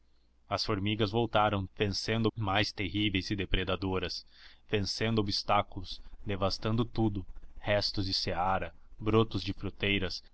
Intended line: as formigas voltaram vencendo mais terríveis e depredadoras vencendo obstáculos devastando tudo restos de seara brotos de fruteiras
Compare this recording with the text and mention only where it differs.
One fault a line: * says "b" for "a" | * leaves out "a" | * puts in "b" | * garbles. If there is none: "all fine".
all fine